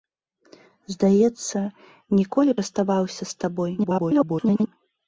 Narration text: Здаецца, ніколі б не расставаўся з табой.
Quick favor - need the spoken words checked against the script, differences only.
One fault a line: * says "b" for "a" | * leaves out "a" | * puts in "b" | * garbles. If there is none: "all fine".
* leaves out "б"
* garbles